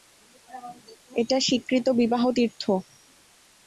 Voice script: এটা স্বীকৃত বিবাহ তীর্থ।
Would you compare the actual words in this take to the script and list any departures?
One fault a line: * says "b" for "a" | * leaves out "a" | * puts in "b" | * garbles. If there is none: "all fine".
all fine